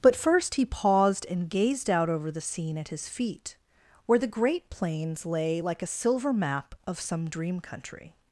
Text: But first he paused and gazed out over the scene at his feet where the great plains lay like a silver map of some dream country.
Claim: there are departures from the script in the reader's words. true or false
false